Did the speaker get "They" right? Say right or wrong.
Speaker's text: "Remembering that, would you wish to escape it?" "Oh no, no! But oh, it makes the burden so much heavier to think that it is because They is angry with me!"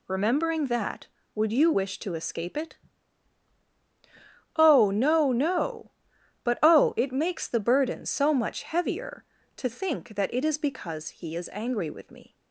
wrong